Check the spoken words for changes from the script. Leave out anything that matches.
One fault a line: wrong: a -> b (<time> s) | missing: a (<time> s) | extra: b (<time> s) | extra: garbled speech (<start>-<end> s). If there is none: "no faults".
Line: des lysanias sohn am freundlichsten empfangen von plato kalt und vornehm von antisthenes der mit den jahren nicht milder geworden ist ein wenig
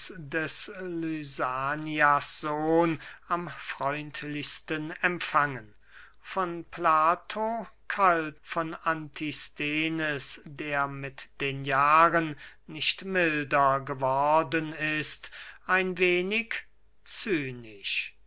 missing: und vornehm (8.4 s)